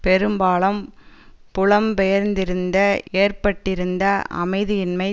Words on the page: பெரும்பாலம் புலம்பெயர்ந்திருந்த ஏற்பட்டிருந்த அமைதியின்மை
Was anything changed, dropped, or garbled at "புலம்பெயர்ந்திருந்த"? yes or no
no